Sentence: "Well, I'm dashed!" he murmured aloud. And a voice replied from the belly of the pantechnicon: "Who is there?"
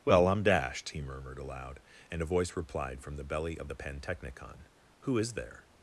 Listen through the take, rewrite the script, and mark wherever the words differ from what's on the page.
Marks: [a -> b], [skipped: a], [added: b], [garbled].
"Well, I'm dashed!" he murmured aloud. And a voice replied from the belly of the pantechnicon: "Who is there?"